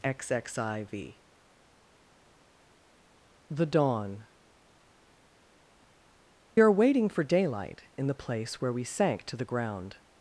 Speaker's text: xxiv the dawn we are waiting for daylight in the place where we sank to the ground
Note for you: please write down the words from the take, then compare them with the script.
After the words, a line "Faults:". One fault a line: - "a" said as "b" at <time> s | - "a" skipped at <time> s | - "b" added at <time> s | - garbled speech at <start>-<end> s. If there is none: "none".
xxiv the dawn are waiting for daylight in the place where we sank to the ground
Faults:
- "we" skipped at 4.2 s